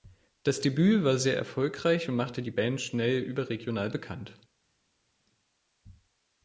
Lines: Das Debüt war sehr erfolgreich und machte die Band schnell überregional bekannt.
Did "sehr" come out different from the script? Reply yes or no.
no